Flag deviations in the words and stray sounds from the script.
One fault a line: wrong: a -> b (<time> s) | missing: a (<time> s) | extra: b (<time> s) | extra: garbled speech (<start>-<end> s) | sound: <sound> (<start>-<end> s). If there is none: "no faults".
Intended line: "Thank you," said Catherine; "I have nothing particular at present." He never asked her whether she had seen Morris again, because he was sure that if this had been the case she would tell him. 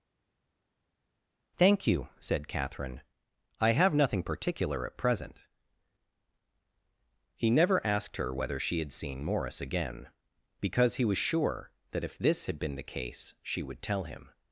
no faults